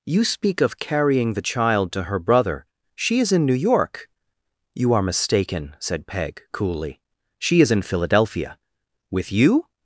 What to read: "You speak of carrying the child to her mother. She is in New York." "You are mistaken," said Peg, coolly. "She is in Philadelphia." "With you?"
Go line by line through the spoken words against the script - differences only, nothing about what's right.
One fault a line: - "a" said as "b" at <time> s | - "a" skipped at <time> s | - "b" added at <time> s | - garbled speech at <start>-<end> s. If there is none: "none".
- "mother" said as "brother" at 2.2 s